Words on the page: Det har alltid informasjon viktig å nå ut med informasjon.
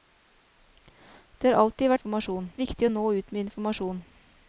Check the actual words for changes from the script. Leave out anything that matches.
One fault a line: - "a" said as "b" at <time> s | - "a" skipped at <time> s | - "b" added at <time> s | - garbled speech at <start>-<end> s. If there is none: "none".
none